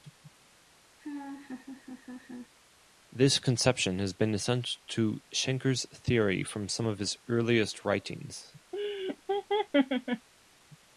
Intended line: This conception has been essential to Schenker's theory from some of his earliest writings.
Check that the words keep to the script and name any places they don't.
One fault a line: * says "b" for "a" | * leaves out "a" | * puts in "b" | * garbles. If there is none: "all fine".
all fine